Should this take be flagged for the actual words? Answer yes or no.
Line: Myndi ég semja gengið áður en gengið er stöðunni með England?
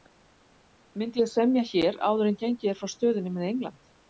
yes